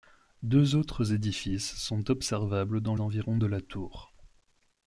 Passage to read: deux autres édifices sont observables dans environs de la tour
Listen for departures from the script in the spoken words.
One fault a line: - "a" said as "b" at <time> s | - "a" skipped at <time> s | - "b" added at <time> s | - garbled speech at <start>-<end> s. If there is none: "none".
none